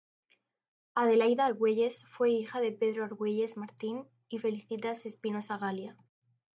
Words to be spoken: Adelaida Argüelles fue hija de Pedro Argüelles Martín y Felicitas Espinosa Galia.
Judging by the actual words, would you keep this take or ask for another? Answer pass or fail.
pass